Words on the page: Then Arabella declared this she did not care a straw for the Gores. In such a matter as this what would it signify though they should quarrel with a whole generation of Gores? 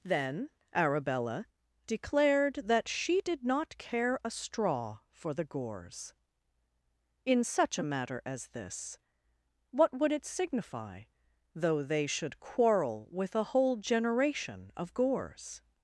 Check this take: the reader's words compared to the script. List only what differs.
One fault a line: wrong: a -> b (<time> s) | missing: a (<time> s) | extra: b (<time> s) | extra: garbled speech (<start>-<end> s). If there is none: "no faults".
wrong: this -> that (2.6 s)